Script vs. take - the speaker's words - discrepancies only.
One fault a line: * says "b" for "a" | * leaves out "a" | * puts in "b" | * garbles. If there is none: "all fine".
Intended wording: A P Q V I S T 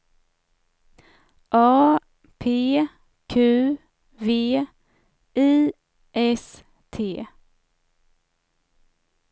all fine